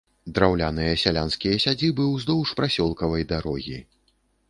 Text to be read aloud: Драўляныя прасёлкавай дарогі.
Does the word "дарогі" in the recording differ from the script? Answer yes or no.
no